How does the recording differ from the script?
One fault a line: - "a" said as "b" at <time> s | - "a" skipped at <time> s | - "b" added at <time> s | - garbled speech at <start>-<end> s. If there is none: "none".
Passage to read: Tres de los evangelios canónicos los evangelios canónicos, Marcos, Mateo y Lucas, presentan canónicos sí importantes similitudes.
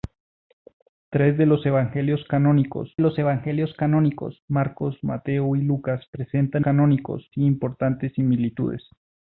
none